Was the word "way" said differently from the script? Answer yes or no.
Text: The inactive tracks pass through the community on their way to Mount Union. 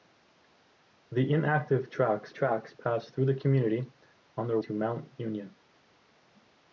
yes